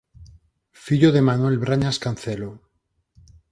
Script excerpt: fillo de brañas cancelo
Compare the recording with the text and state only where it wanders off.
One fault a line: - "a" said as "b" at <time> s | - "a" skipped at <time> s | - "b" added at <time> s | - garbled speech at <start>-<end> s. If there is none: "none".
- "manuel" added at 1.2 s